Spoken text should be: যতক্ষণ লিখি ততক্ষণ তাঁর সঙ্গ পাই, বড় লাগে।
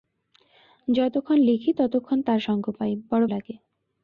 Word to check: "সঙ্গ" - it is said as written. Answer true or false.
true